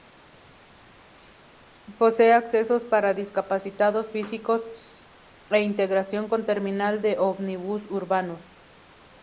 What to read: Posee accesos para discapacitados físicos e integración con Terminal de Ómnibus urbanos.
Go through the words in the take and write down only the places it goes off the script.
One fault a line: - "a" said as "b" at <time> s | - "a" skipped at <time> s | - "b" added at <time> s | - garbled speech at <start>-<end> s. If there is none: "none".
none